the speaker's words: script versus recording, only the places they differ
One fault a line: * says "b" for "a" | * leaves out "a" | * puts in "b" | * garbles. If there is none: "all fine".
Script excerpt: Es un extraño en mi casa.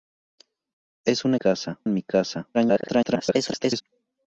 * says "casa" for "extraño"
* garbles